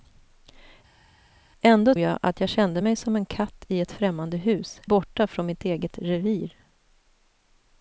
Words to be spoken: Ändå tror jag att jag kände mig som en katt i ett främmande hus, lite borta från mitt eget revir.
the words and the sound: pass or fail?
fail